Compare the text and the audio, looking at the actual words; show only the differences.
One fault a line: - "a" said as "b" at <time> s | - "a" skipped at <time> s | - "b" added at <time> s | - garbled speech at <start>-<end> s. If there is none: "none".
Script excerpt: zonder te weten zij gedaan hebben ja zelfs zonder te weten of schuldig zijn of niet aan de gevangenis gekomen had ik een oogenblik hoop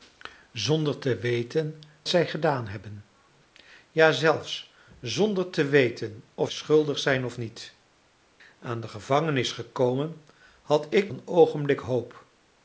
none